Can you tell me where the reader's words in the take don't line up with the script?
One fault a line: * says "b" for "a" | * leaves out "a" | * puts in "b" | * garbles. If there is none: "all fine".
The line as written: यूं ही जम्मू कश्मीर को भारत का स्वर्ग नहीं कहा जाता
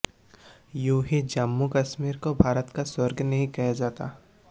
all fine